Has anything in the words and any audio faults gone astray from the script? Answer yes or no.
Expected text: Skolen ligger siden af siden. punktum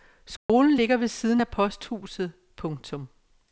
yes